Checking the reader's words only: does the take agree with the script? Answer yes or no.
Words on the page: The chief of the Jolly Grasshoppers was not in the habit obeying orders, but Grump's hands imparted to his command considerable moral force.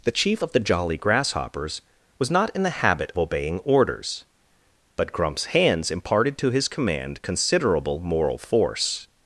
yes